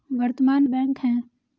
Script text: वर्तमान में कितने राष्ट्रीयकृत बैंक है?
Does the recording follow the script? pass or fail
fail